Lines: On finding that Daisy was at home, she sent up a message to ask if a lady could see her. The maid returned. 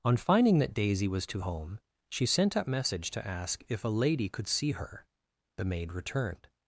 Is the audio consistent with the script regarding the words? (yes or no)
no